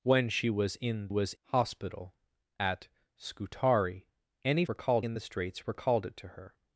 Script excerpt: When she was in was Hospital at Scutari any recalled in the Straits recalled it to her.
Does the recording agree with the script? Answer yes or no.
yes